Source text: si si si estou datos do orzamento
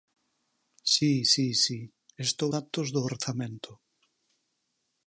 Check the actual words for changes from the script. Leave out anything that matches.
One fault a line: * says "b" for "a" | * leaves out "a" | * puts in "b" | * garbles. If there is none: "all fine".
all fine